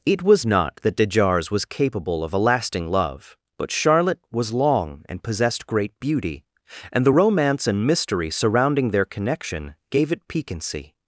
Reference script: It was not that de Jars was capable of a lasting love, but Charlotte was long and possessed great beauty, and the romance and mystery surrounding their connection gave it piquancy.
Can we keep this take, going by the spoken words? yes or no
yes